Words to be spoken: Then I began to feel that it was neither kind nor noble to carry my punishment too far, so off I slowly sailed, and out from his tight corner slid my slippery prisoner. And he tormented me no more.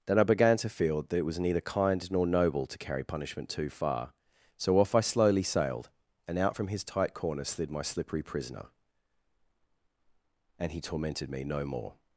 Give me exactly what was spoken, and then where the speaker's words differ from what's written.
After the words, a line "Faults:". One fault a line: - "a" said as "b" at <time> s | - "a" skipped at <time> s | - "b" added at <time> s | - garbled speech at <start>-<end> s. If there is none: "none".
Then I began to feel that it was neither kind nor noble to carry punishment too far, so off I slowly sailed, and out from his tight corner slid my slippery prisoner. And he tormented me no more.
Faults:
- "my" skipped at 3.0 s